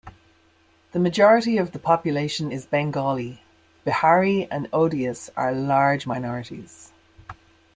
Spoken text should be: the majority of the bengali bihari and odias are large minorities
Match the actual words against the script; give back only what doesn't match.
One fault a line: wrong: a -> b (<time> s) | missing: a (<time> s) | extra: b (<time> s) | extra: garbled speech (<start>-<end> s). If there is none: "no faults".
extra: population is (1.8 s)